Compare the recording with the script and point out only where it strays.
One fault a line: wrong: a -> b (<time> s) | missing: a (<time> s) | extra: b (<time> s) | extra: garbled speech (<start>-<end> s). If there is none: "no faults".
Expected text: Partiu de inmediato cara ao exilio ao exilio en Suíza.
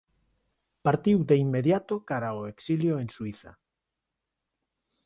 missing: ao exilio (2.9 s)